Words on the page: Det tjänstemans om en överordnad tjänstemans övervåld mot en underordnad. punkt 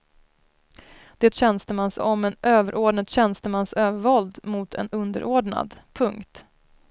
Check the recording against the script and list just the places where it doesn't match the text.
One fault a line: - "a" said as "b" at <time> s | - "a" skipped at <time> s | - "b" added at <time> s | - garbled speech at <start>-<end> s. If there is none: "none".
none